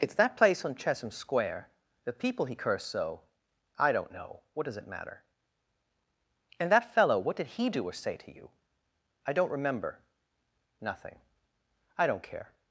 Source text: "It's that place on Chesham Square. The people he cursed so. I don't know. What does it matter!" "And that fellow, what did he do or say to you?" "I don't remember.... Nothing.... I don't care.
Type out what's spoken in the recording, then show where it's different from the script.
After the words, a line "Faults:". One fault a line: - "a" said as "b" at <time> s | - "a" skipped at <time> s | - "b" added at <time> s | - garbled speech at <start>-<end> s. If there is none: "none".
"It's that place on Chesham Square. The people he cursed so. I don't know. What does it matter!" "And that fellow, what did he do or say to you?" "I don't remember.... Nothing.... I don't care.
Faults:
none